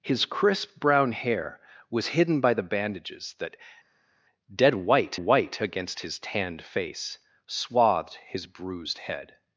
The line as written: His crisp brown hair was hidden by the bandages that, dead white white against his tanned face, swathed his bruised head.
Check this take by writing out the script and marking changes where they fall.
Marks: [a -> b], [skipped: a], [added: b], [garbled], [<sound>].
His crisp brown hair was hidden by the bandages that, dead white white against his tanned face, swathed his bruised head.